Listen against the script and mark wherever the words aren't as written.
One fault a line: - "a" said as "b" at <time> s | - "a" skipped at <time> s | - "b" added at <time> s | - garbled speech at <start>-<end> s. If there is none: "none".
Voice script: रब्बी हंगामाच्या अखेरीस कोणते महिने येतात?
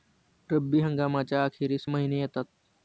- "कोणते" skipped at 1.9 s